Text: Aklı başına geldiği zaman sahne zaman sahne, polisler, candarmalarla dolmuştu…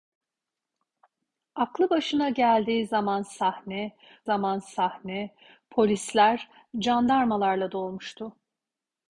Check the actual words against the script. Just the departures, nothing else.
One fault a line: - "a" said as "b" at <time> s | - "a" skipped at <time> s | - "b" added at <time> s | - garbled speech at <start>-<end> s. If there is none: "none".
none